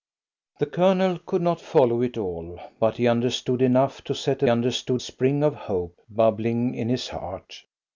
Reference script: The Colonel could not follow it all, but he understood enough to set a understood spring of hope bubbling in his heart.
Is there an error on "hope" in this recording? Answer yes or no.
no